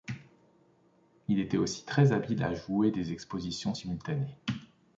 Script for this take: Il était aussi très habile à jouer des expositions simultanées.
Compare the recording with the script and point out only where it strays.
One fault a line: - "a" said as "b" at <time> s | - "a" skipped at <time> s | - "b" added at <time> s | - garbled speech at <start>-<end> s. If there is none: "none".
none